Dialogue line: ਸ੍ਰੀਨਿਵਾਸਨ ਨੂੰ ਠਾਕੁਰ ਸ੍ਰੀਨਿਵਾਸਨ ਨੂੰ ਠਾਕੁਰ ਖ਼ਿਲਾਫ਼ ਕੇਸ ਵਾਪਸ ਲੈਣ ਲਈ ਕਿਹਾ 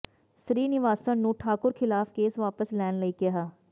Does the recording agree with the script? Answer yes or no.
no